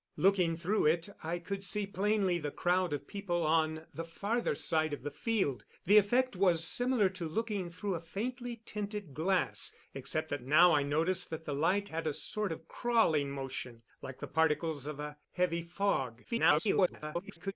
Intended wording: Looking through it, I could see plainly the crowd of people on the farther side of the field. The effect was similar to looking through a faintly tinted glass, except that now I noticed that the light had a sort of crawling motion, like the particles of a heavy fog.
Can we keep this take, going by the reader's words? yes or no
no